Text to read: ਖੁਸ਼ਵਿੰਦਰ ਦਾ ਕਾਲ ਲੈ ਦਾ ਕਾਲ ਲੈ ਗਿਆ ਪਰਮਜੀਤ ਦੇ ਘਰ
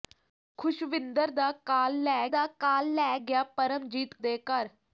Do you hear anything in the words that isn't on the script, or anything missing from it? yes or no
no